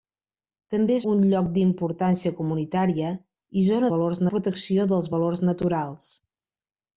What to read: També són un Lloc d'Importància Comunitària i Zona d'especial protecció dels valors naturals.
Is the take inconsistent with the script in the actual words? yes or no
yes